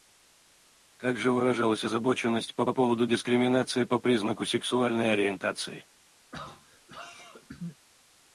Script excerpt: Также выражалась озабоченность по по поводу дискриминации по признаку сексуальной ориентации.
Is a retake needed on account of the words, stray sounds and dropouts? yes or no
yes